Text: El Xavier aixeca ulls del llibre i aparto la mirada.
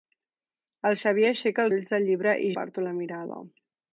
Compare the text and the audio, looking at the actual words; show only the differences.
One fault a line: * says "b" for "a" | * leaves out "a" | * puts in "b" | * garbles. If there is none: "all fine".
all fine